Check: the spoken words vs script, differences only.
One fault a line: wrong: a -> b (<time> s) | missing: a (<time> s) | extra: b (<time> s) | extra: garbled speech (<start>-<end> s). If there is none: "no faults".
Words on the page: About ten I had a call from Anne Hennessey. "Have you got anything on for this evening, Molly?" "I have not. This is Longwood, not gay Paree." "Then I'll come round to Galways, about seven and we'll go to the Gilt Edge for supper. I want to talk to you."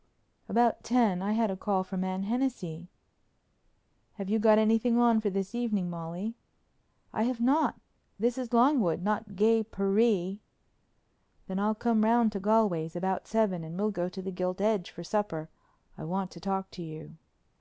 no faults